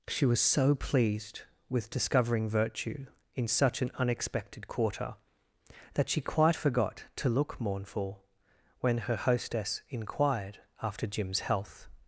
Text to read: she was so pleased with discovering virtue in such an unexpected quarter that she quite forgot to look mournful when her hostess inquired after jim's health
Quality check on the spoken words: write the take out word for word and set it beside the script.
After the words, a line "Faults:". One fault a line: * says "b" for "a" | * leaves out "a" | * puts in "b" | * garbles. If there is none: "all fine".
she was so pleased with discovering virtue in such an unexpected quarter that she quite forgot to look mournful when her hostess inquired after jim's health
Faults:
all fine